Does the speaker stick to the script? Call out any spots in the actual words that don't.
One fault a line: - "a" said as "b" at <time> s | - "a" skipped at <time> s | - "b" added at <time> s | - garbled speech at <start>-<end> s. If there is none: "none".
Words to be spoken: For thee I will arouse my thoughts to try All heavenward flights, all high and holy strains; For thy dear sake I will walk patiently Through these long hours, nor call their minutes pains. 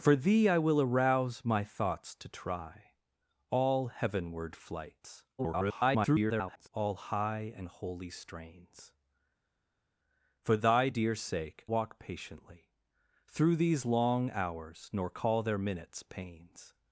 - garbled speech at 5.4-6.7 s
- "I will" skipped at 11.6 s